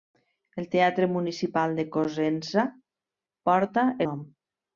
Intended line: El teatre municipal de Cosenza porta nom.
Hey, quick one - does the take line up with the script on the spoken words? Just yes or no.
yes